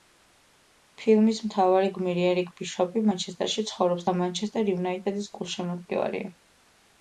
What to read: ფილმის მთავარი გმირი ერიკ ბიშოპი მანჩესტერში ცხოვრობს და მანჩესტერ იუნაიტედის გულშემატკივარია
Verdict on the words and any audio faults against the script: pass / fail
pass